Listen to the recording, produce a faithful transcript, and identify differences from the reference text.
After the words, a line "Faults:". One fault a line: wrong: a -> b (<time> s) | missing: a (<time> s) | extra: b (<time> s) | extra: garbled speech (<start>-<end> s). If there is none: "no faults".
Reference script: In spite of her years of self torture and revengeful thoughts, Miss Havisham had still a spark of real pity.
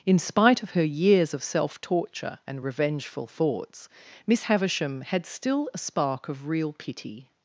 In spite of her years of self torture and revengeful thoughts, Miss Havisham had still a spark of real pity.
Faults:
no faults